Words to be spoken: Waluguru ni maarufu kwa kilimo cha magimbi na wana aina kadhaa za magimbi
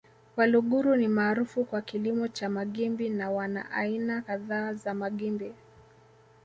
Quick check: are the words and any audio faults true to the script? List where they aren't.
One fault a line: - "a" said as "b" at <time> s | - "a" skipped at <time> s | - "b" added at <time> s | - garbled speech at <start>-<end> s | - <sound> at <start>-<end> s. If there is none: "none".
none